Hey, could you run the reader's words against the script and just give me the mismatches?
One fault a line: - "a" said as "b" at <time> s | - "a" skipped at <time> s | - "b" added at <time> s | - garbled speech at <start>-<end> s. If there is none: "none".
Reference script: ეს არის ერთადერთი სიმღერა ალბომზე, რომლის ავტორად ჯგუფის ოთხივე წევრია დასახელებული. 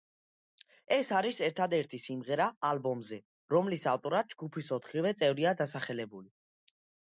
none